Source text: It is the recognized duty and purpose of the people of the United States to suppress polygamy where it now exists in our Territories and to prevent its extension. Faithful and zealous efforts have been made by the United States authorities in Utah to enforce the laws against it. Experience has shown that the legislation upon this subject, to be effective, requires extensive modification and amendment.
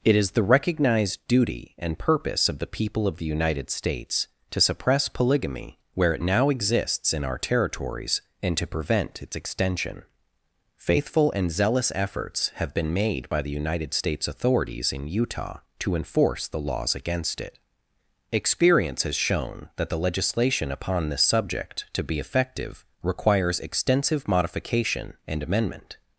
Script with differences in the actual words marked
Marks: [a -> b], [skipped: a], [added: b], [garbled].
It is the recognized duty and purpose of the people of the United States to suppress polygamy where it now exists in our Territories and to prevent its extension. Faithful and zealous efforts have been made by the United States authorities in Utah to enforce the laws against it. Experience has shown that the legislation upon this subject, to be effective, requires extensive modification and amendment.